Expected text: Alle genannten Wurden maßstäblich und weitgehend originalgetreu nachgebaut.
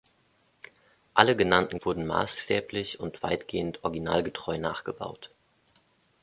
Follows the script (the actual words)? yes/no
yes